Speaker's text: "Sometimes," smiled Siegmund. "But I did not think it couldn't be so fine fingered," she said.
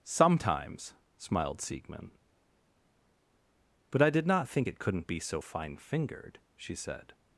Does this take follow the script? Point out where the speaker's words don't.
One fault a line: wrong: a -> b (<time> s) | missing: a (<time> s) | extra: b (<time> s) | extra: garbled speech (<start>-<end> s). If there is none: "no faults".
no faults